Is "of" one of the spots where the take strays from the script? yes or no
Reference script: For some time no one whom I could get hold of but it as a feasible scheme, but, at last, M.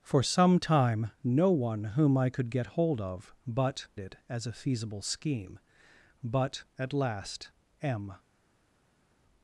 no